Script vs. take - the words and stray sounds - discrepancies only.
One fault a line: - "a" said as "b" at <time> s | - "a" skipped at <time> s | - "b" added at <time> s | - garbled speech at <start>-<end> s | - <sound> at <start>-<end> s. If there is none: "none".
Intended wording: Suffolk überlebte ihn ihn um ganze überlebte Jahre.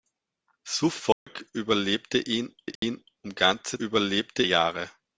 - dropout at 1.1-1.3 s
- dropout at 2.8-2.8 s